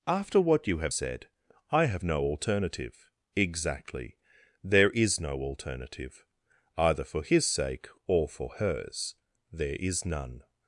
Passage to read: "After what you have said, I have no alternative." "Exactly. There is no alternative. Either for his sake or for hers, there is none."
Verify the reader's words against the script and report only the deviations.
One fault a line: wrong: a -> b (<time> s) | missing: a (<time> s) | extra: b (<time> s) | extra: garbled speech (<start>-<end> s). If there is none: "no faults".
no faults